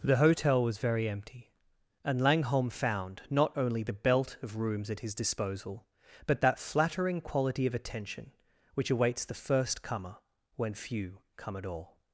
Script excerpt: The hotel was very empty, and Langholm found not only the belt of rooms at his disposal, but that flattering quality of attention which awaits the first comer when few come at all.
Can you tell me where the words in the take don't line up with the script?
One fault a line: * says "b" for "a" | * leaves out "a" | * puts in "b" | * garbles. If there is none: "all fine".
all fine